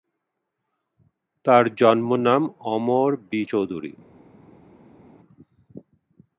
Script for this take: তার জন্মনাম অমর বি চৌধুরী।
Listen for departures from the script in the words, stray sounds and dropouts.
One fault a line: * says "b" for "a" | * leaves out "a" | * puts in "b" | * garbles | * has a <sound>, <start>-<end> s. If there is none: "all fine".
all fine